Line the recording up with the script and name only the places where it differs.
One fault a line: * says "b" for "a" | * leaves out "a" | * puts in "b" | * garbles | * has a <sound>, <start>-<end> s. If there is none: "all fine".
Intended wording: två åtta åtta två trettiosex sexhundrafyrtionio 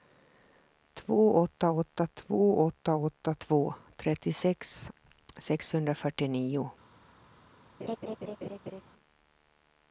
* puts in "åtta åtta två"
* has a laugh, 7.8-8.8 s